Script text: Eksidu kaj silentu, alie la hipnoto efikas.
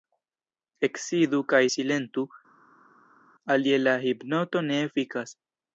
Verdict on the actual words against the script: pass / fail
fail